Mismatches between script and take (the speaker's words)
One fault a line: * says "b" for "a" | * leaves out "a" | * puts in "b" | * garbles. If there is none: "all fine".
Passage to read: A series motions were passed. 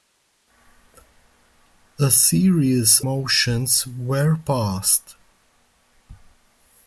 all fine